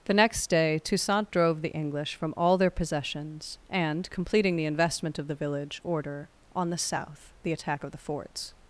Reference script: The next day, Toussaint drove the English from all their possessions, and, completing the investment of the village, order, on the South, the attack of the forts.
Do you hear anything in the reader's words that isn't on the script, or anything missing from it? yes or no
no